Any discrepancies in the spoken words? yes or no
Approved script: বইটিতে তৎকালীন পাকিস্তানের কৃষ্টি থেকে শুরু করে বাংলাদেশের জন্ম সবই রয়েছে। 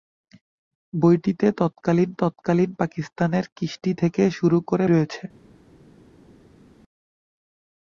yes